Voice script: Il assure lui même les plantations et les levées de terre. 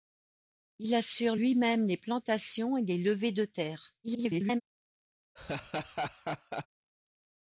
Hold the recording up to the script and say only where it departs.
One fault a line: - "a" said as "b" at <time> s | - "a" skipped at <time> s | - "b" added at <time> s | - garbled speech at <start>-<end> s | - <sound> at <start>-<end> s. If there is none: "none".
- garbled speech at 4.0-4.6 s
- laugh at 5.4-6.7 s